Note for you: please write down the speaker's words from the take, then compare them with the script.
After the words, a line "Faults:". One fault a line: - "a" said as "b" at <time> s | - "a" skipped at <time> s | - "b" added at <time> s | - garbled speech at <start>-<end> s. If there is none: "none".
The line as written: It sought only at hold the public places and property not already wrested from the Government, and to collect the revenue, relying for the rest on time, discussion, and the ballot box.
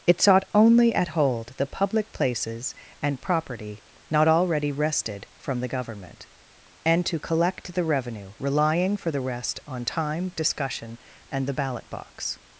It sought only at hold the public places and property not already wrested from the Government, and to collect the revenue, relying for the rest on time, discussion, and the ballot box.
Faults:
none